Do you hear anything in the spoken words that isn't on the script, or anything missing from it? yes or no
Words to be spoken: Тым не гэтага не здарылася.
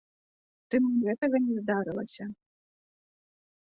no